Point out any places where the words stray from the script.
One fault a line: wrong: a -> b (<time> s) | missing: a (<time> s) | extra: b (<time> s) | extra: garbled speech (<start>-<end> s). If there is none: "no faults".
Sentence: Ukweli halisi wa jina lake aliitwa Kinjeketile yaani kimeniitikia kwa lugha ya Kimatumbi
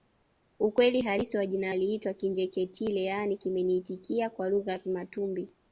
missing: lake (1.7 s)